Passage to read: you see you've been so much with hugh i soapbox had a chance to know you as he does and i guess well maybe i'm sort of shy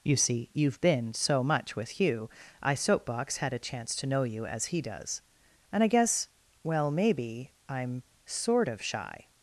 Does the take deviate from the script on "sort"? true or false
false